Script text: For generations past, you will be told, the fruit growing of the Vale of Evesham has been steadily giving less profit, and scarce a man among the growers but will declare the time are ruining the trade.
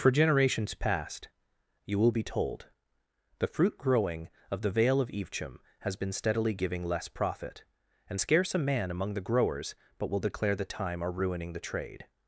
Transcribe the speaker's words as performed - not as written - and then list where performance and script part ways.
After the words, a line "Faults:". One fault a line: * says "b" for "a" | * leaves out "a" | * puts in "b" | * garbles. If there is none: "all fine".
For generations past, you will be told, the fruit growing of the Vale of Evesham has been steadily giving less profit, and scarce a man among the growers but will declare the time are ruining the trade.
Faults:
all fine